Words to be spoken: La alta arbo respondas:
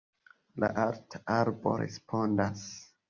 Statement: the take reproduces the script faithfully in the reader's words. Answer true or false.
true